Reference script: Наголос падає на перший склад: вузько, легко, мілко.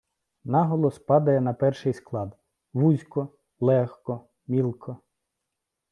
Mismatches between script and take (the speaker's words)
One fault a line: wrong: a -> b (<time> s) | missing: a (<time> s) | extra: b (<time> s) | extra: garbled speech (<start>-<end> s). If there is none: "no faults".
no faults